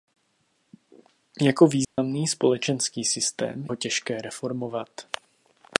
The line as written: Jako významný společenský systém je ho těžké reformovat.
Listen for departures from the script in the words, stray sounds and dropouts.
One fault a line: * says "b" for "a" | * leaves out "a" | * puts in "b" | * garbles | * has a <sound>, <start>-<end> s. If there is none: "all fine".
* has a dropout, 1.8-2.0 s
* leaves out "je"